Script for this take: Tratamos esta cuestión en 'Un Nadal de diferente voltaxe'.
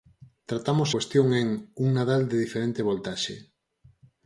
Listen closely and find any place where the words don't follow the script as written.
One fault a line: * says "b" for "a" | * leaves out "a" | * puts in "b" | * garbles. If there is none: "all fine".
* leaves out "esta"